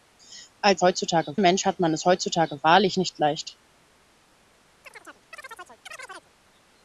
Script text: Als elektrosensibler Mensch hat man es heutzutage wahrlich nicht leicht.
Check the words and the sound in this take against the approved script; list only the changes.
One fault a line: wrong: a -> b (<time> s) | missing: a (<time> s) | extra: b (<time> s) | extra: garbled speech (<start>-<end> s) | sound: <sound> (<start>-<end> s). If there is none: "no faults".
wrong: elektrosensibler -> heutzutage (0.8 s)
sound: chirp (4.8-6.3 s)